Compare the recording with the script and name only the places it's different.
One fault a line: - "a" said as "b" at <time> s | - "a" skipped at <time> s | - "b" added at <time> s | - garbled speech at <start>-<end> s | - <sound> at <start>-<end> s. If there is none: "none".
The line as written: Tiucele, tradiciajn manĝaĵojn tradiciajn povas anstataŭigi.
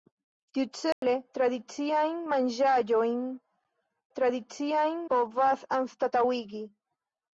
- dropout at 0.9-1.0 s